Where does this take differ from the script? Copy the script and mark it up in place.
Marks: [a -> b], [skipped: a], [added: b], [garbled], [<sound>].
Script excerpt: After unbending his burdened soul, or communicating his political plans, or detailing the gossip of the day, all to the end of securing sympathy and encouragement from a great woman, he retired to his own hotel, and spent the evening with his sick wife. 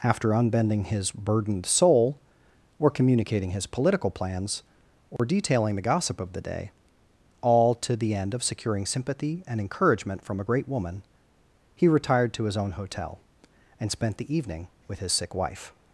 After unbending his burdened soul, or communicating his political plans, or [dropout] detailing the gossip of the day, all to the end of securing sympathy and encouragement from a great woman, he retired to his own hotel, and spent the evening with his sick wife.